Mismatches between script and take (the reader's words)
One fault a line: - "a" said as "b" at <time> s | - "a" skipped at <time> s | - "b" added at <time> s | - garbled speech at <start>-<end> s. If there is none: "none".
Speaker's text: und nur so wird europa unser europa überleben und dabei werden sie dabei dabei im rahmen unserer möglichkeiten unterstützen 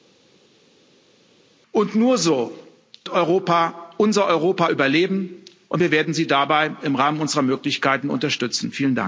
- "dabei" said as "wir" at 5.8 s
- "dabei" skipped at 6.7 s